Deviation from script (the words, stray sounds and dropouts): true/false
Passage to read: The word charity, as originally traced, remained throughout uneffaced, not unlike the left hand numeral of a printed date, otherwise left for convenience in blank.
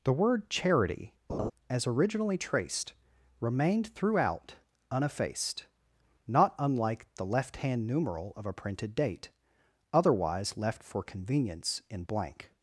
true